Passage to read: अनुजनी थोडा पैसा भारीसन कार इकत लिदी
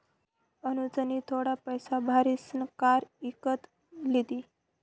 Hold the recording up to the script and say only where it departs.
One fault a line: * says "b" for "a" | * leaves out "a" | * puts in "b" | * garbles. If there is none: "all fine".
all fine